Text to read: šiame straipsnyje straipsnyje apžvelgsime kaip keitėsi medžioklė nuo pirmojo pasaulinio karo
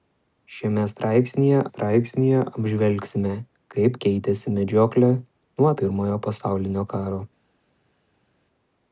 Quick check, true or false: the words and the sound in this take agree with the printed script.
true